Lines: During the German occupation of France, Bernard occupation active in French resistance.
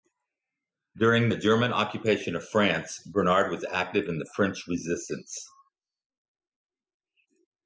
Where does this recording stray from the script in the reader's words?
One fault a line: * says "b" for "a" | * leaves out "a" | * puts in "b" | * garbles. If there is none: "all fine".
* says "was" for "occupation"
* puts in "the"